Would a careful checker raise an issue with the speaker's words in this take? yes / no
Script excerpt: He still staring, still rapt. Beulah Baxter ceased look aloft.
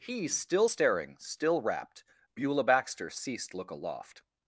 no